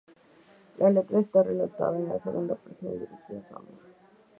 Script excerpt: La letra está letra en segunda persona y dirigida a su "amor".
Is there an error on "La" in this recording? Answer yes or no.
no